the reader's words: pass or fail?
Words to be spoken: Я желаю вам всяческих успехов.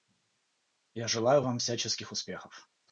pass